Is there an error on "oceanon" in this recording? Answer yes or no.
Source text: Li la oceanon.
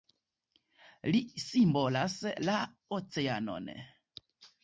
no